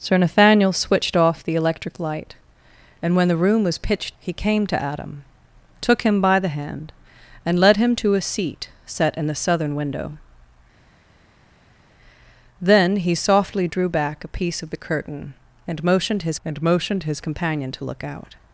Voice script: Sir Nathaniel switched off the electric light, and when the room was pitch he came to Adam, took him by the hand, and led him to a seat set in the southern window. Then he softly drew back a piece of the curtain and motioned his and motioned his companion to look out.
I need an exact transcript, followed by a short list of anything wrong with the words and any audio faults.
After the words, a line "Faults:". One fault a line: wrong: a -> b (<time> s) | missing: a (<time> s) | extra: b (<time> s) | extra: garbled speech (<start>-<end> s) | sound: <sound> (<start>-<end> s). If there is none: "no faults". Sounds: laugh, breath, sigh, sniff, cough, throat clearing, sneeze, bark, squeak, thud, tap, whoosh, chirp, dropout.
Sir Nathaniel switched off the electric light, and when the room was pitch he came to Adam, took him by the hand, and led him to a seat set in the southern window. Then he softly drew back a piece of the curtain and motioned his and motioned his companion to look out.
Faults:
no faults